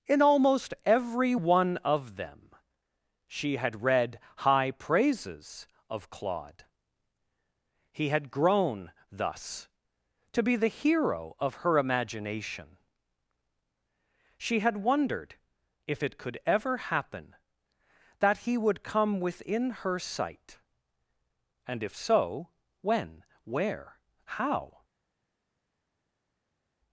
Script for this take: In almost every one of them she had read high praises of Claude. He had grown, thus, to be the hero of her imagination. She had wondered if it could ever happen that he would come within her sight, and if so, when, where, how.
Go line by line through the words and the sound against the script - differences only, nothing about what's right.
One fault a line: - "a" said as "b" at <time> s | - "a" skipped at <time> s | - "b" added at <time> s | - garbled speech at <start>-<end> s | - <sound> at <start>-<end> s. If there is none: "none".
none